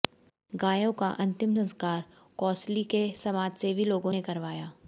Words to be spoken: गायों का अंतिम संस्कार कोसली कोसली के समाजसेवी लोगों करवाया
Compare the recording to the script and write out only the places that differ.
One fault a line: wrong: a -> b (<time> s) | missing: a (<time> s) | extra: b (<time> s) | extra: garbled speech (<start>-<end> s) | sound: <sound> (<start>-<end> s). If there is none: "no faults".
missing: कोसली (2.8 s)
extra: ने (4.1 s)